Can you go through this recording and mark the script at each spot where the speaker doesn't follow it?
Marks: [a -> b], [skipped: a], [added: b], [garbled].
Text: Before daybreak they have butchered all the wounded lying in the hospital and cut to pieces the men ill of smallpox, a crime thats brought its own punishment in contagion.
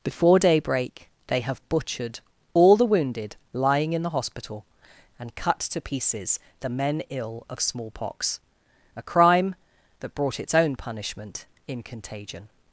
Before daybreak they have butchered all the wounded lying in the hospital and cut to pieces the men ill of smallpox, a crime [thats -> that] brought its own punishment in contagion.